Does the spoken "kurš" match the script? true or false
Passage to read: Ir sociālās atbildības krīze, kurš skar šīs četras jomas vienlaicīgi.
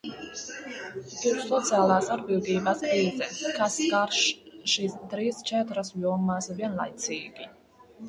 false